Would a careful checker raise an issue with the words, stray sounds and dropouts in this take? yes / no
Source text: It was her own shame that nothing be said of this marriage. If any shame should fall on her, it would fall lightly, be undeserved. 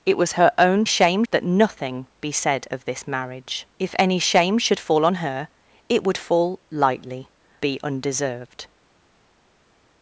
no